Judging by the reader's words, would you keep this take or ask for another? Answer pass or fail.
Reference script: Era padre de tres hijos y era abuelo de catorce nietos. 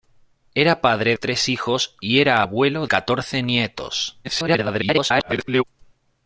fail